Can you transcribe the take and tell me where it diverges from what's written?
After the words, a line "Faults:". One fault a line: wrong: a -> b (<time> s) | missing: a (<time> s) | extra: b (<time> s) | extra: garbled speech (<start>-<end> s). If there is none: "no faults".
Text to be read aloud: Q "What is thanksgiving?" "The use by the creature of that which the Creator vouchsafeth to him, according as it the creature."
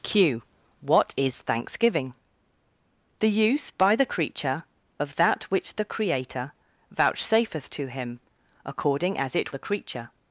Q "What is thanksgiving?" "The use by the creature of that which the Creator vouchsafeth to him, according as it the creature."
Faults:
no faults